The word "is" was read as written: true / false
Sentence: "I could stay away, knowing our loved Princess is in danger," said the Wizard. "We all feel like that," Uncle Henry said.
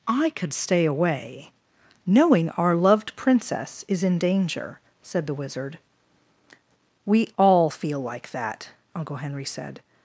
true